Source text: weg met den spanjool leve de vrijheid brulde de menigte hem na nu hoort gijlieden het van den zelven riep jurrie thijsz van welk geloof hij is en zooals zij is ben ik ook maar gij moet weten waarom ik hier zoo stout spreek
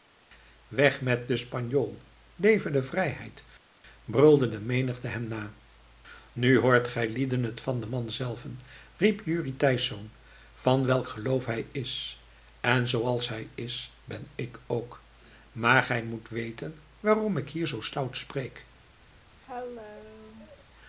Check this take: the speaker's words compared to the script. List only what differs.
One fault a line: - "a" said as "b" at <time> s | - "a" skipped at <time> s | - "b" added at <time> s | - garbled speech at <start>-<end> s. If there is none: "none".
- "man" added at 7.9 s
- "zij" said as "hij" at 13.3 s